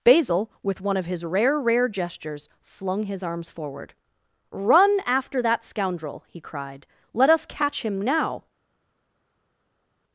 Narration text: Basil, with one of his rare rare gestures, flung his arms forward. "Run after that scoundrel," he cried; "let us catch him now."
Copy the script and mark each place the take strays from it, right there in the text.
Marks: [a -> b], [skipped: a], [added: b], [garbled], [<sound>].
Basil, with one of his rare rare gestures, flung his arms forward. "Run after that scoundrel," he cried; "let us catch him now."